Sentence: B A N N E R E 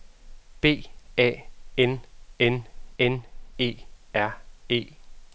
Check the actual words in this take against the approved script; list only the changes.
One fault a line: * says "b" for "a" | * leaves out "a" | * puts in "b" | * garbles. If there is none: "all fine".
* puts in "N"